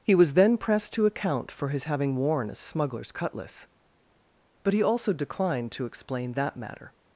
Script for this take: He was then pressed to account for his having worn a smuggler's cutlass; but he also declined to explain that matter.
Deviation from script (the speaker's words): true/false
false